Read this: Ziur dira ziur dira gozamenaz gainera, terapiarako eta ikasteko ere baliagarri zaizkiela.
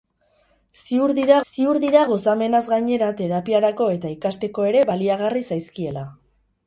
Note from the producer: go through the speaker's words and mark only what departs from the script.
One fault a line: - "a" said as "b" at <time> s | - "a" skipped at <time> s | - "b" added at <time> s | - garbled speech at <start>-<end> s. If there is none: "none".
none